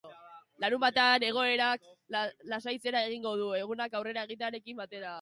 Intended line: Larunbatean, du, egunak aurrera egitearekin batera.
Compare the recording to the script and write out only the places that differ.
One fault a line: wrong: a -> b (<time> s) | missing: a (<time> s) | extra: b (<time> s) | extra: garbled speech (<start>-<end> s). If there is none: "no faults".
extra: egoerak lasaitzera egingo (1.3 s)